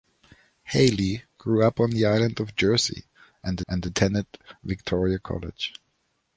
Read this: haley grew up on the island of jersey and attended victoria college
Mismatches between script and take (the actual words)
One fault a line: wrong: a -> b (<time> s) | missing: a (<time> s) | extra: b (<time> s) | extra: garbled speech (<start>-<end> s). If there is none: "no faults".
extra: and (3.7 s)